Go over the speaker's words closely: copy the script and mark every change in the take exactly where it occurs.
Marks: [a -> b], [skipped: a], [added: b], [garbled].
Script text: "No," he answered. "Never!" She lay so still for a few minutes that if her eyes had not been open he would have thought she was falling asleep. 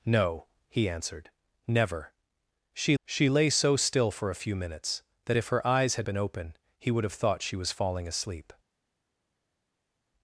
"No," he answered. "Never!" She [added: she] lay so still for a few minutes that if her eyes had [skipped: not] been open he would have thought she was falling asleep.